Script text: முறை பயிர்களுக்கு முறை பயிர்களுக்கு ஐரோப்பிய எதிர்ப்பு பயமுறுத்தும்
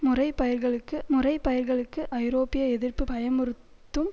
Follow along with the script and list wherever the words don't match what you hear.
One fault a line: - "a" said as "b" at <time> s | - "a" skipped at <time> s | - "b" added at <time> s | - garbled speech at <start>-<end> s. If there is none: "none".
none